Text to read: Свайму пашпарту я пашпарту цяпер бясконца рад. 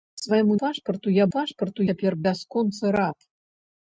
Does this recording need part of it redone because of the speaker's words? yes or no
no